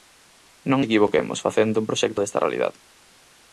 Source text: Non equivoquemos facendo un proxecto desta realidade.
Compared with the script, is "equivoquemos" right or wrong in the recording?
right